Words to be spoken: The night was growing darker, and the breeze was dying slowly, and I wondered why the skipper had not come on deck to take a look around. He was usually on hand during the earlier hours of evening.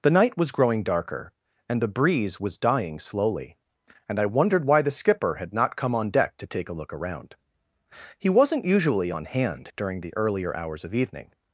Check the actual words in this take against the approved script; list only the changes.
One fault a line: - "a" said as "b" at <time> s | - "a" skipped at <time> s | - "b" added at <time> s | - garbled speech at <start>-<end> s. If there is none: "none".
- "was" said as "wasn't" at 8.3 s